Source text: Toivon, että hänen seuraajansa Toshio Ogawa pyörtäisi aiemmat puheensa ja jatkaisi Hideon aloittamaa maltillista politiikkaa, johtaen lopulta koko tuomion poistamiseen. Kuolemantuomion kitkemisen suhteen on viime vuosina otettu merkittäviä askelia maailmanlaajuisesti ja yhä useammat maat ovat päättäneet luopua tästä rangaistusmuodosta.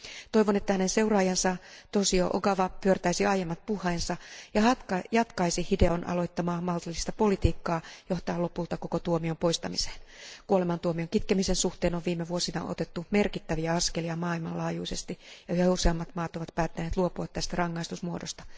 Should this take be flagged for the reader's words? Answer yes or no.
no